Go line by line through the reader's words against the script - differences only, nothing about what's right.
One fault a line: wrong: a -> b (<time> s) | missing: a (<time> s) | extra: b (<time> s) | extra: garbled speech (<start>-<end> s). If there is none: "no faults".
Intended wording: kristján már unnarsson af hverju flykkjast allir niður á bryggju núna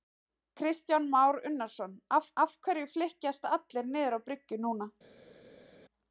extra: af (2.4 s)